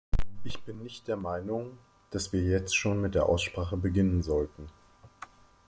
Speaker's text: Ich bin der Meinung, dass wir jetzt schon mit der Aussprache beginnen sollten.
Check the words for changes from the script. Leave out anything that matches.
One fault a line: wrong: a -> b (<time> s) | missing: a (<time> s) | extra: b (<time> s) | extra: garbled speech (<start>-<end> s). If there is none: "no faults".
extra: nicht (0.8 s)